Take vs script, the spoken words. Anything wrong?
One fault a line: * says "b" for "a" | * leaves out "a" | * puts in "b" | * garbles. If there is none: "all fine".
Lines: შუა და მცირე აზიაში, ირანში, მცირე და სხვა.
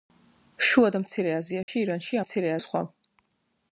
all fine